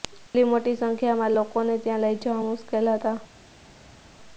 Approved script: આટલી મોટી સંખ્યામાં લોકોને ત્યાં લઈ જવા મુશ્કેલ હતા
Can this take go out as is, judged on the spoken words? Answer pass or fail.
pass